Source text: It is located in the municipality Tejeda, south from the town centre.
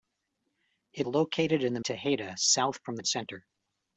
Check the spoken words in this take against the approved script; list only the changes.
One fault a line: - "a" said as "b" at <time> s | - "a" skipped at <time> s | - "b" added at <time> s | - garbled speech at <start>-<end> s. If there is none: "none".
- "is" skipped at 1.1 s
- "municipality" skipped at 1.8 s
- "town" skipped at 3.0 s